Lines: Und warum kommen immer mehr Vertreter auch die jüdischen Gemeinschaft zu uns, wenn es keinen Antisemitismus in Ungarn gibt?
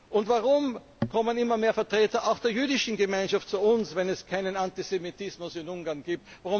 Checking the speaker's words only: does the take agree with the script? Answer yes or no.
no